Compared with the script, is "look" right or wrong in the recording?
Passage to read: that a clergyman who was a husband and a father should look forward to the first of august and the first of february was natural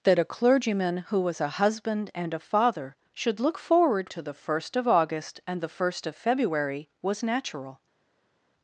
right